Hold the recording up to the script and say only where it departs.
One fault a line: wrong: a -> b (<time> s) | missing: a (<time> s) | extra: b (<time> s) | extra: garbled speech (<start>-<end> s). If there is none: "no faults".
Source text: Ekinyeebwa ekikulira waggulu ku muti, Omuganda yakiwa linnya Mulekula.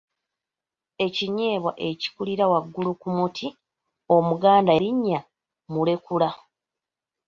missing: yakiwa (4.7 s)